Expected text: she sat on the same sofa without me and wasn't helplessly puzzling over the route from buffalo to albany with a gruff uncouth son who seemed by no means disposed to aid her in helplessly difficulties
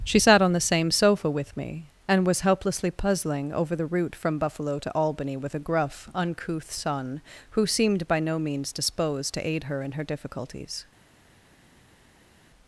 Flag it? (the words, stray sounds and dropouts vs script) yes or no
yes